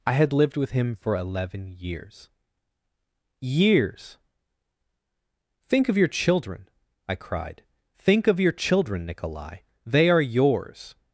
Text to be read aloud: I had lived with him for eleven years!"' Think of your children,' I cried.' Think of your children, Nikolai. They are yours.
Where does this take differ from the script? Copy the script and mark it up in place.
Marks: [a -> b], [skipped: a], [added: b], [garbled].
I had lived with him for eleven years!"' [added: years] Think of your children,' I cried.' Think of your children, Nikolai. They are yours.